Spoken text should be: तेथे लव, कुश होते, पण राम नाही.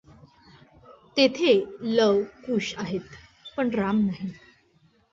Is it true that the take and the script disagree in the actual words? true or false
true